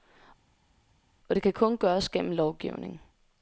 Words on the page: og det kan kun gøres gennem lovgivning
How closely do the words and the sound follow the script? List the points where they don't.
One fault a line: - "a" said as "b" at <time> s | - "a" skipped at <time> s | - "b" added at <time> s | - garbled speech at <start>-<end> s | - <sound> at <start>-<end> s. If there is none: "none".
none